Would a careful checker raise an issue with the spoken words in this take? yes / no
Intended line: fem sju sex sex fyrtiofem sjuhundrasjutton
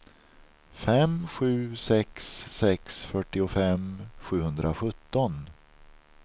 no